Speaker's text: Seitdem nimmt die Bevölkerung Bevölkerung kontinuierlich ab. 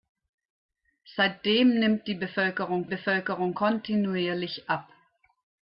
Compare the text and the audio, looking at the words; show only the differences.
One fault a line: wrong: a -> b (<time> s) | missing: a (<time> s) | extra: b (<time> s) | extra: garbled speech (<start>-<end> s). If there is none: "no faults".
no faults